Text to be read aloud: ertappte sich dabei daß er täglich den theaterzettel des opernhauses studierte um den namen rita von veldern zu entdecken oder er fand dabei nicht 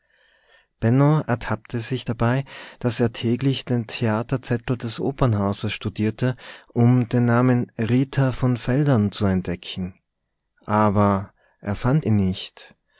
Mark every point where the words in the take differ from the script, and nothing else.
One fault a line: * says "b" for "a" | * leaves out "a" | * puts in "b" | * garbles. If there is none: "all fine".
* says "aber" for "oder"
* says "ihn" for "dabei"